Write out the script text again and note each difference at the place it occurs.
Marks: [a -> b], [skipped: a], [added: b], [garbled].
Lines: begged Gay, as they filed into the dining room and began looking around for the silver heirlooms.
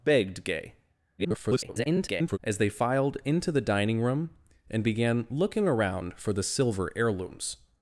begged Gay, [garbled] as they filed into the dining room and began looking around for the silver heirlooms.